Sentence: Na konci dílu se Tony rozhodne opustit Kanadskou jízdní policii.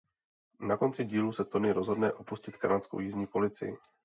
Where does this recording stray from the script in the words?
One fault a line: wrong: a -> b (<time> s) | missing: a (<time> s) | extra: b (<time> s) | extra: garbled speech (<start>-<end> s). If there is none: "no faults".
no faults